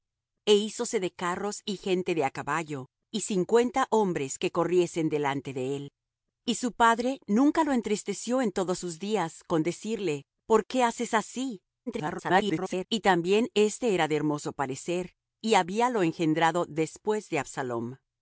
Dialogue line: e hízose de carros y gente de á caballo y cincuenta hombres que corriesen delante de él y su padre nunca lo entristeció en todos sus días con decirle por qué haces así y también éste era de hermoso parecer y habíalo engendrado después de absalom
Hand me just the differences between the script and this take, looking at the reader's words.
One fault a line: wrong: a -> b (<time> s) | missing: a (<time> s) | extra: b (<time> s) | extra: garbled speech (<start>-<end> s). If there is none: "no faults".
extra: garbled speech (11.9-12.9 s)